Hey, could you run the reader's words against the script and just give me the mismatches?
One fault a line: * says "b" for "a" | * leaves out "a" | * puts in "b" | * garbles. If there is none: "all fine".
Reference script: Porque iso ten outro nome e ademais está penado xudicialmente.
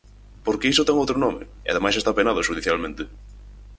all fine